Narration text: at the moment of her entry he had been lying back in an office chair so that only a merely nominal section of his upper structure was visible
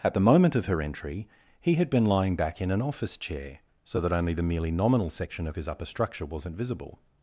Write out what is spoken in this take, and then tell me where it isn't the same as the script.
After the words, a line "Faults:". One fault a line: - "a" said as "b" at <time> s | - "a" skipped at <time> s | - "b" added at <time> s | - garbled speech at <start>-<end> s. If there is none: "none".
at the moment of her entry he had been lying back in an office chair so that only the merely nominal section of his upper structure wasn't visible
Faults:
- "a" said as "the" at 4.3 s
- "was" said as "wasn't" at 6.2 s